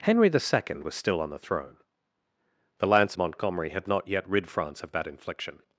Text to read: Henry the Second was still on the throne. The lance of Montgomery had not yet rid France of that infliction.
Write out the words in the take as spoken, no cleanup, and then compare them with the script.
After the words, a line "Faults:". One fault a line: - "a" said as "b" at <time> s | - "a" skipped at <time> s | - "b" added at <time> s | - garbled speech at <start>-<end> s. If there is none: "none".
Henry the Second was still on the throne. The lance Montgomery had not yet rid France of that infliction.
Faults:
- "of" skipped at 3.2 s